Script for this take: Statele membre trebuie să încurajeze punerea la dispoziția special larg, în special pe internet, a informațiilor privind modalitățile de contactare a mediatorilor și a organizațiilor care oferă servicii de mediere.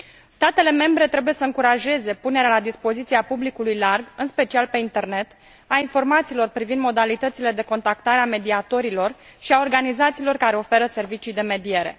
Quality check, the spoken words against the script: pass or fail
fail